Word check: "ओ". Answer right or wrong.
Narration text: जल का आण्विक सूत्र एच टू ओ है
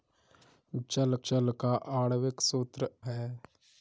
wrong